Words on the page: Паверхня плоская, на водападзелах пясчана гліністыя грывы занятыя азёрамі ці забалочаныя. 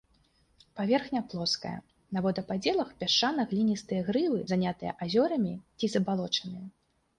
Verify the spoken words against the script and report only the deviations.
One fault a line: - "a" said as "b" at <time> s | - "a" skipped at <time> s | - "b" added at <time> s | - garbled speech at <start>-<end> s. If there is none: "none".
none